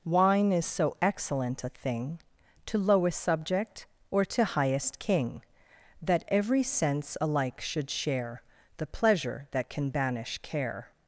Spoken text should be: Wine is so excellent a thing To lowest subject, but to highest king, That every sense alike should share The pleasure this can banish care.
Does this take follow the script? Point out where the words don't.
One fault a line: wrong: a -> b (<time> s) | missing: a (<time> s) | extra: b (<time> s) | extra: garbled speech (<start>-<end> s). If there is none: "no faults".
wrong: but -> or (4.1 s)
wrong: this -> that (9.5 s)